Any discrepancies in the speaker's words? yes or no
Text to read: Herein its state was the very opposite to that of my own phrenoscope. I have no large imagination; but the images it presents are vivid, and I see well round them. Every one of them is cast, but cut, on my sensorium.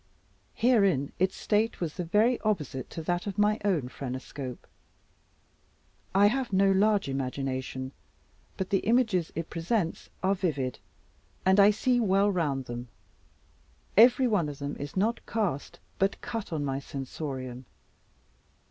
yes